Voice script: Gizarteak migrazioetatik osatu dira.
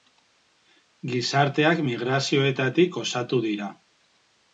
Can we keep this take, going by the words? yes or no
yes